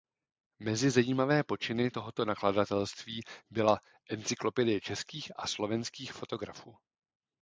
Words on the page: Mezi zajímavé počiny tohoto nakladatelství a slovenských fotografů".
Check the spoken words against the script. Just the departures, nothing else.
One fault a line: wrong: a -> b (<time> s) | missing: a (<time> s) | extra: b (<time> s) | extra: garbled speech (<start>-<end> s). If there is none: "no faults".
extra: byla Encyklopedie českých (3.5 s)